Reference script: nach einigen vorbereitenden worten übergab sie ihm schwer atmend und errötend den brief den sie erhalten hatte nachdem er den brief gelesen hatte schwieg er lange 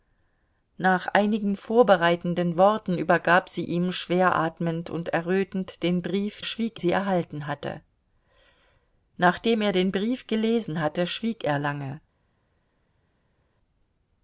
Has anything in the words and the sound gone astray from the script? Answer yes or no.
yes